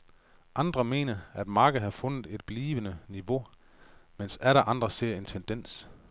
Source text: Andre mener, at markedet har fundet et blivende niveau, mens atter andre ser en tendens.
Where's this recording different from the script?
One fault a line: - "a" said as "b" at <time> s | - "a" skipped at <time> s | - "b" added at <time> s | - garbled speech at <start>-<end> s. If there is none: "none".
none